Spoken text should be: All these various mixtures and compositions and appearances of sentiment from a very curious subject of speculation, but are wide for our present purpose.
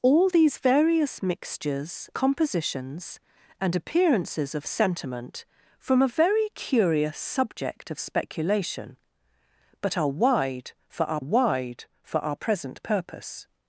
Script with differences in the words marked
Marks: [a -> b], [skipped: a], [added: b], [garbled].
All these various mixtures [skipped: and] compositions and appearances of sentiment from a very curious subject of speculation, but are wide for our [added: wide for our] present purpose.